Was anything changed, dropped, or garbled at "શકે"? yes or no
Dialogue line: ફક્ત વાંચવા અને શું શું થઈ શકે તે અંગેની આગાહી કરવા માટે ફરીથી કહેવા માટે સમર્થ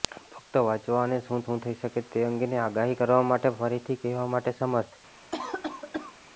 no